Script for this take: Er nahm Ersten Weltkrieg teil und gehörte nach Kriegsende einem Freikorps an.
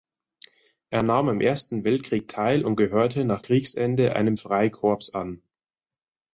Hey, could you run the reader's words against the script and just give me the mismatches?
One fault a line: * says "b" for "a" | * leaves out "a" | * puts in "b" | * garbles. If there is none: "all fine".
* puts in "am"